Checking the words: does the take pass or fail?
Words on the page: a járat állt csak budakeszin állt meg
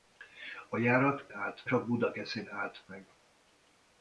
pass